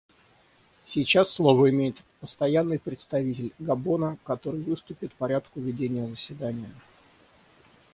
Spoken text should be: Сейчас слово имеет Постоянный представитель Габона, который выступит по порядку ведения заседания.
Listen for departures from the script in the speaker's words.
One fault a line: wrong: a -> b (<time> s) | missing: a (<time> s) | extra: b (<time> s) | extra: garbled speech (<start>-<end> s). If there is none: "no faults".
missing: по (5.1 s)